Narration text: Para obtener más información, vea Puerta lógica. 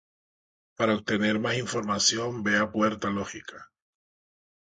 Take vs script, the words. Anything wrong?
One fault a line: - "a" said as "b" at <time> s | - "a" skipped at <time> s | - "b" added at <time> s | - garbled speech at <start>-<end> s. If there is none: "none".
none